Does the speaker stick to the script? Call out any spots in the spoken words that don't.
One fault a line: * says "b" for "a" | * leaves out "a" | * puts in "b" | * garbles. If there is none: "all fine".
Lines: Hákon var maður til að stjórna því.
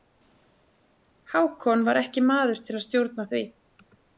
* puts in "ekki"